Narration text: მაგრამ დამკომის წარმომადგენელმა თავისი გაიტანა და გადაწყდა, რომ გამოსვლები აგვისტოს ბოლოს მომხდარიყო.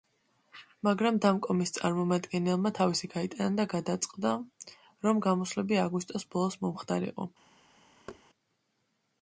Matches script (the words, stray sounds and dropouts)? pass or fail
fail